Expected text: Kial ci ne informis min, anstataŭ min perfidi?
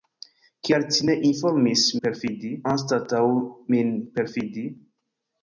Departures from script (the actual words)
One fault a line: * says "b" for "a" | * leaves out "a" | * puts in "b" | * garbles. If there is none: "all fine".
* says "perfidi" for "min"